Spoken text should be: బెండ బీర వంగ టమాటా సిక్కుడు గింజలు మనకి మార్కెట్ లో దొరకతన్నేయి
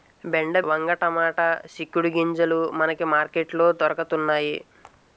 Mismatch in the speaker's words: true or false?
true